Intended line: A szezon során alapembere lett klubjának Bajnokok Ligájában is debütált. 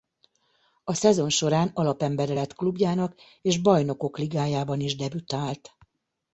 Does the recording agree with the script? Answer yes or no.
no